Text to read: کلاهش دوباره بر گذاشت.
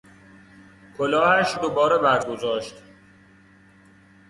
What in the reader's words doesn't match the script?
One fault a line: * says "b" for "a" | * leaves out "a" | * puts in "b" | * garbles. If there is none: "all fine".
all fine